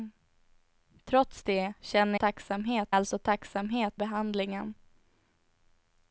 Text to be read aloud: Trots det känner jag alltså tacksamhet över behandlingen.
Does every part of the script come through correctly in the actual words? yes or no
no